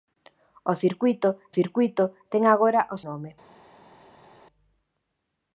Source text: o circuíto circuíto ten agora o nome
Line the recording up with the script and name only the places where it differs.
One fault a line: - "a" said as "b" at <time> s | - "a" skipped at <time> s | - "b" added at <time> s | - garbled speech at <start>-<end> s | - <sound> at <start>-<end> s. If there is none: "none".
none